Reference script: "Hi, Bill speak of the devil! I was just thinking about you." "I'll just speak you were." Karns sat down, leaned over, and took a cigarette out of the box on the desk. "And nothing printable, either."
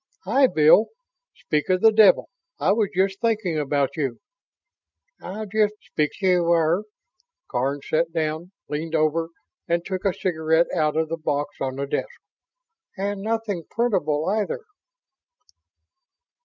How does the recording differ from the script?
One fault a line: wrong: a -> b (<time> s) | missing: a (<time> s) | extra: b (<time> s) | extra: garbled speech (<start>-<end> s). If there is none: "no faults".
no faults